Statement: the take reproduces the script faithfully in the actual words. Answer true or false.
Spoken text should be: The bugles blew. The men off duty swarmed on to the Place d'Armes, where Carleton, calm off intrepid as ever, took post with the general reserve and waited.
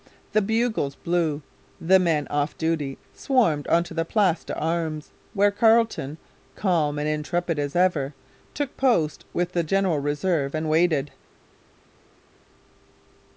false